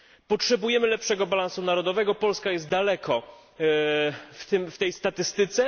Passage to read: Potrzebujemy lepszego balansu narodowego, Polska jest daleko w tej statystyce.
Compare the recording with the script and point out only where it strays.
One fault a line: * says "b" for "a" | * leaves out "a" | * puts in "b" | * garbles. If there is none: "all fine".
all fine